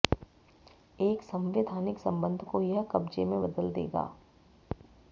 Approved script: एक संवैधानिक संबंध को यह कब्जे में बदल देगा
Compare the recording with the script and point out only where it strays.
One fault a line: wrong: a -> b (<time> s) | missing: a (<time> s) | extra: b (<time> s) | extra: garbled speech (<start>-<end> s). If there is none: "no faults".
no faults